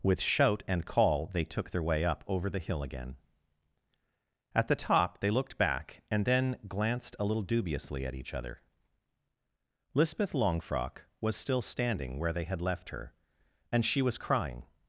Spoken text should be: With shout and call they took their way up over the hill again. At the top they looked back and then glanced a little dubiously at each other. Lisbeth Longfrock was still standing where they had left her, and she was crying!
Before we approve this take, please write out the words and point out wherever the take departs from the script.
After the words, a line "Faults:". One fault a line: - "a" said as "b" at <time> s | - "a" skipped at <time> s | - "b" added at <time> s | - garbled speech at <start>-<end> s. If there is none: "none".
With shout and call they took their way up over the hill again. At the top they looked back and then glanced a little dubiously at each other. Lisbeth Longfrock was still standing where they had left her, and she was crying!
Faults:
none